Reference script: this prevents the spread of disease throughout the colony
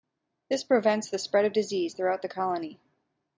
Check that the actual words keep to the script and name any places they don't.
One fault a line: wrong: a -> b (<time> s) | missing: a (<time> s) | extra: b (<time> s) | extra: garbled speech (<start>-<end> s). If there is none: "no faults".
no faults